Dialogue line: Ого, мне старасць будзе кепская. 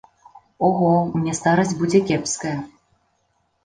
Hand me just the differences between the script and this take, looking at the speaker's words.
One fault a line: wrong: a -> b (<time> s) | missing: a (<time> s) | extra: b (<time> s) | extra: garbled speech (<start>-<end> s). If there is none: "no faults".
no faults